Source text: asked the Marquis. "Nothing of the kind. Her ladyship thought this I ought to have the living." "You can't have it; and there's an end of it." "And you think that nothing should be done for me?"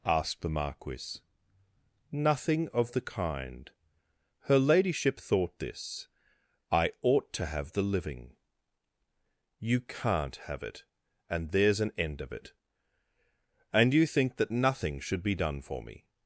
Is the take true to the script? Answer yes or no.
yes